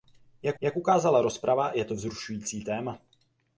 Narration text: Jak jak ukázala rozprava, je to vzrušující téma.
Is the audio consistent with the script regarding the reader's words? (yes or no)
yes